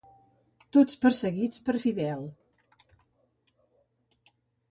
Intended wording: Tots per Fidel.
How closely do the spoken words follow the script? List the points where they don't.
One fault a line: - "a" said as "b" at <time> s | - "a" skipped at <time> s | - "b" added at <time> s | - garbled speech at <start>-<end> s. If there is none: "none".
- "perseguits" added at 1.0 s